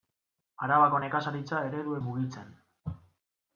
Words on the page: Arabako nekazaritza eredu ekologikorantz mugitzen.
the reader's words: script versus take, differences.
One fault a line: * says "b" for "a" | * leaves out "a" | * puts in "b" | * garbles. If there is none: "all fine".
* leaves out "ekologikorantz"